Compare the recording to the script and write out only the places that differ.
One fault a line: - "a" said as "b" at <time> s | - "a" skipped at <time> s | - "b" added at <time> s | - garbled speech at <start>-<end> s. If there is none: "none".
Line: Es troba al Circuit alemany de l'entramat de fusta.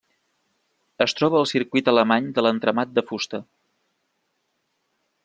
none